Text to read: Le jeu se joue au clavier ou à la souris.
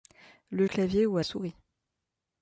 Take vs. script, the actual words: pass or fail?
fail